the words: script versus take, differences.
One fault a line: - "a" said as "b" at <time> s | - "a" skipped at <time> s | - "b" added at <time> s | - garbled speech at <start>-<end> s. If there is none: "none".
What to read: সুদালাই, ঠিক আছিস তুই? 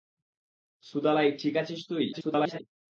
- garbled speech at 2.1-2.6 s